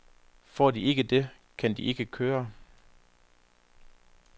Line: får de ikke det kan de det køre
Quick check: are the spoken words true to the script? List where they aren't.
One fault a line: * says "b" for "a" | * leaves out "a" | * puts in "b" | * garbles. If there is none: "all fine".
* says "ikke" for "det"